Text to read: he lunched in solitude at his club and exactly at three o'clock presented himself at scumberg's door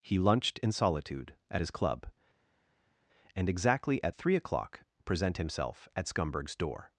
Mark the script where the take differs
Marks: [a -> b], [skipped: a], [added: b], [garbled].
he lunched in solitude at his club and exactly at three o'clock [presented -> present] himself at scumberg's door